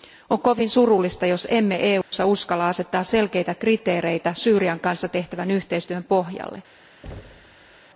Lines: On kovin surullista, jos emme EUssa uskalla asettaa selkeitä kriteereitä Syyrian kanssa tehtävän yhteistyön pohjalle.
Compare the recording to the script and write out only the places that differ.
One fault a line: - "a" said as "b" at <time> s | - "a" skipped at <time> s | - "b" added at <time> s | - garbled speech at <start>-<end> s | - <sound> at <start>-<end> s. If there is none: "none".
- dropout at 2.0-2.1 s
- thud at 7.0-7.8 s